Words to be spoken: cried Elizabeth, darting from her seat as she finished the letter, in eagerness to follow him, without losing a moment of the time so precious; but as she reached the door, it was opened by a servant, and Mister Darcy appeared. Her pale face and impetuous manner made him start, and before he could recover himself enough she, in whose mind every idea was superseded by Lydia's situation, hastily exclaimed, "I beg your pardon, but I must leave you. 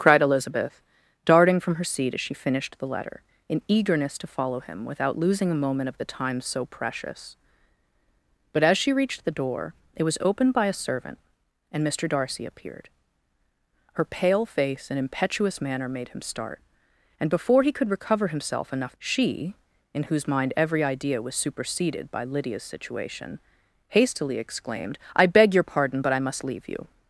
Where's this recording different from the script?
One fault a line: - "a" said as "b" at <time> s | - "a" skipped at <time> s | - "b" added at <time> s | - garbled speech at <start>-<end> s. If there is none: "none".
none